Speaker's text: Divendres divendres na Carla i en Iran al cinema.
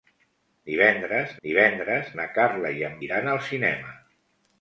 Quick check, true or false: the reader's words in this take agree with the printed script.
true